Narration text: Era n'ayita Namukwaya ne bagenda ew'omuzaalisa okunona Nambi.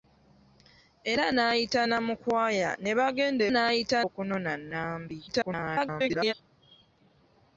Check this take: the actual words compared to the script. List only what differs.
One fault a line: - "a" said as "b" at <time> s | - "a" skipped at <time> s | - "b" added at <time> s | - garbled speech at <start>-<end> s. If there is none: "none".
- "ew'omuzaalisa" said as "n'ayita" at 3.5 s
- garbled speech at 5.3-6.3 s